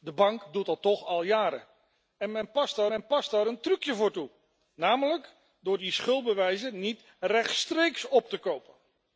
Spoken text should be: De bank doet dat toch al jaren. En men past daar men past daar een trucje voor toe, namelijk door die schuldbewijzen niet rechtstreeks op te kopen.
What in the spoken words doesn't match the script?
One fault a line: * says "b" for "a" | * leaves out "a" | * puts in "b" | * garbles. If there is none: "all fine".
all fine